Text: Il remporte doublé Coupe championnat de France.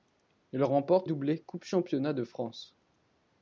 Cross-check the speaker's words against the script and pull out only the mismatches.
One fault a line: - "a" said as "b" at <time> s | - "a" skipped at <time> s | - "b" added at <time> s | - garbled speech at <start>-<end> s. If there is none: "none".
none